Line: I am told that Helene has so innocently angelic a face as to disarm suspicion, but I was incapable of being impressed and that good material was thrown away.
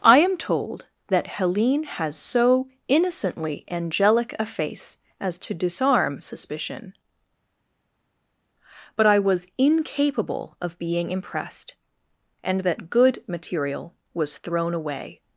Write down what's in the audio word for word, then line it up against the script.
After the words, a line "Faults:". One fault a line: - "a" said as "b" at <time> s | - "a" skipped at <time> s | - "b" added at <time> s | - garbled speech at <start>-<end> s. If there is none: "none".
I am told that Helene has so innocently angelic a face as to disarm suspicion, but I was incapable of being impressed and that good material was thrown away.
Faults:
none